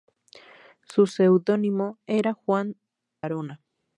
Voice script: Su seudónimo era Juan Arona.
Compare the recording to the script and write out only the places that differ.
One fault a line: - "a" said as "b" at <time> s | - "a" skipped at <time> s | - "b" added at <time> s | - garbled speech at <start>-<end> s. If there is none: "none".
none